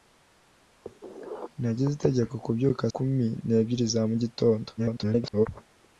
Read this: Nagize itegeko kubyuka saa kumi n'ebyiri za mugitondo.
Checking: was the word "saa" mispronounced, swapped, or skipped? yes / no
yes